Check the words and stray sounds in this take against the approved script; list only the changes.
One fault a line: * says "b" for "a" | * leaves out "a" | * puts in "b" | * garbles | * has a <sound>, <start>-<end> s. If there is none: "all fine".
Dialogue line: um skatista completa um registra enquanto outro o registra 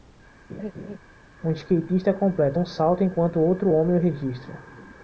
* has a laugh, 0.5-1.0 s
* says "salto" for "registra"
* puts in "homem"